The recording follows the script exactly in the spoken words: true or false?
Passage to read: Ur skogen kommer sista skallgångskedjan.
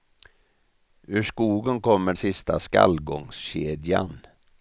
true